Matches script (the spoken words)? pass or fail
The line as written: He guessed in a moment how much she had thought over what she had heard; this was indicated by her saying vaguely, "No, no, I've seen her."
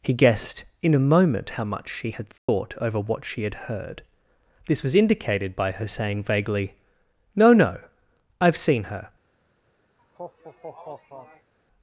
pass